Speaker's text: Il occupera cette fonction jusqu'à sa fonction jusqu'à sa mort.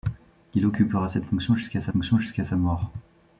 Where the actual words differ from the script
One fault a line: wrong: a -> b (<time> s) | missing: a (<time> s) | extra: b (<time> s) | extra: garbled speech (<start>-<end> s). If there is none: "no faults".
no faults